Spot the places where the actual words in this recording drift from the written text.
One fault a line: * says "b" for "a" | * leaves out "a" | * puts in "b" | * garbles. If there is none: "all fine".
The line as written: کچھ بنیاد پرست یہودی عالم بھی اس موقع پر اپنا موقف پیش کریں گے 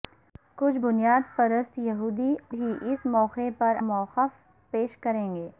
* leaves out "عالم"
* leaves out "اپنا"